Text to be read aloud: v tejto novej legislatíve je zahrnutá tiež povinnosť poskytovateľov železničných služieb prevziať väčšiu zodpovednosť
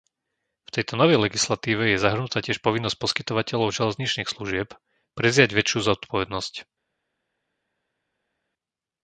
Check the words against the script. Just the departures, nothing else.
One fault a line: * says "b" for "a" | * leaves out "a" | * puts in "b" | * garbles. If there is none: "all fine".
all fine